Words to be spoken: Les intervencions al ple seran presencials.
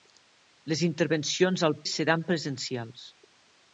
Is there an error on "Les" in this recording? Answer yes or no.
no